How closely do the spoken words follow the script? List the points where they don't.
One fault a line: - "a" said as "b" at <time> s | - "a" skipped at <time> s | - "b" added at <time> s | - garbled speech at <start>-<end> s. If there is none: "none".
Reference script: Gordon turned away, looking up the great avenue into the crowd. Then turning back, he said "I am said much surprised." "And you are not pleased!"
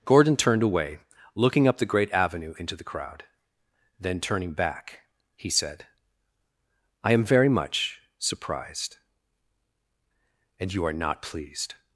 - "said" said as "very" at 7.2 s